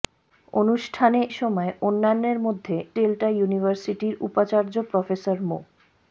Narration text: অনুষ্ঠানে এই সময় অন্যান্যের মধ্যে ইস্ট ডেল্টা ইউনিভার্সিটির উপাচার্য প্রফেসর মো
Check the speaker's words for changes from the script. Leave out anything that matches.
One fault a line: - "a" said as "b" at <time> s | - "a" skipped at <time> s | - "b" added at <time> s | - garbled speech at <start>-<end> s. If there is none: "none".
- "এই" skipped at 1.2 s
- "ইস্ট" skipped at 2.8 s